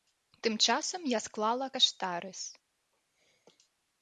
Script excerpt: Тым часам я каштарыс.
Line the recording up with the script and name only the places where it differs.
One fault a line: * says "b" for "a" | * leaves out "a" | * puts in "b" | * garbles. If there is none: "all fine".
* puts in "склала"